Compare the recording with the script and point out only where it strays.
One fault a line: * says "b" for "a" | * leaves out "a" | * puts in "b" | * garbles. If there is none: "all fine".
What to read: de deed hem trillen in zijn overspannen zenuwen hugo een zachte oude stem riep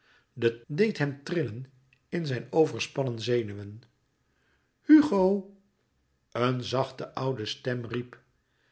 all fine